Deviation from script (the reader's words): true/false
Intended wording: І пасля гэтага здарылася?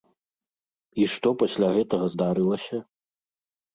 true